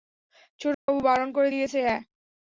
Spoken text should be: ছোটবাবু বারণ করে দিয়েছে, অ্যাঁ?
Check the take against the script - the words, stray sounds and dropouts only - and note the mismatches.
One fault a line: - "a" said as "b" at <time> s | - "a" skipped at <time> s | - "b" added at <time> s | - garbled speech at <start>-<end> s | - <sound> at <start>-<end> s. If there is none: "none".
- dropout at 0.7-0.9 s